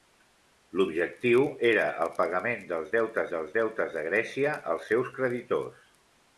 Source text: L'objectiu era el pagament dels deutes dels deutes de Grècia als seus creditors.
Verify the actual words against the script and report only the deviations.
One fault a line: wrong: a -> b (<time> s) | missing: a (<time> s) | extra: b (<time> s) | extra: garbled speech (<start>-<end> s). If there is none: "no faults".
no faults